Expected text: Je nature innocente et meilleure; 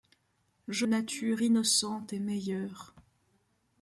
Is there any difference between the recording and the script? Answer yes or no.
no